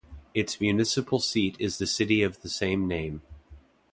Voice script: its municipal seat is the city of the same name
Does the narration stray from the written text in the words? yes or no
no